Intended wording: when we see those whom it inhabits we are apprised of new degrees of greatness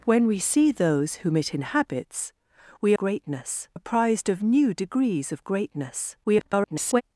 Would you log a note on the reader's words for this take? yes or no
yes